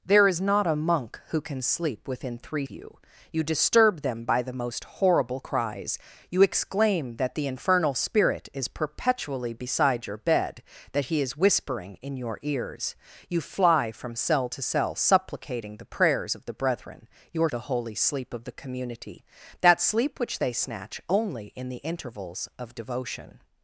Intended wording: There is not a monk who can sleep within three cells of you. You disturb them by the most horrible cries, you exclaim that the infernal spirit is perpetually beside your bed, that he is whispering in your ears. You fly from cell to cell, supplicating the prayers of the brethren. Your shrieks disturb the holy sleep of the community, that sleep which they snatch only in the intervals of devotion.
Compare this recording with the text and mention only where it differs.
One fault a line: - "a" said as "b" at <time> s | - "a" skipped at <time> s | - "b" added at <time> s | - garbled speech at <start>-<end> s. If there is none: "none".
- "cells of" skipped at 2.6 s
- "shrieks disturb" skipped at 17.5 s